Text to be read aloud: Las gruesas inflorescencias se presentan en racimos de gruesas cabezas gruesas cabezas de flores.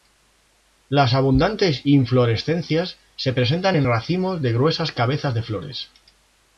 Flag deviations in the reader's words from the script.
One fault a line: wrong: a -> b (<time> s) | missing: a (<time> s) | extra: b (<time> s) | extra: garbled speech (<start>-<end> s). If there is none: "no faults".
wrong: gruesas -> abundantes (1.1 s)
missing: gruesas cabezas (5.3 s)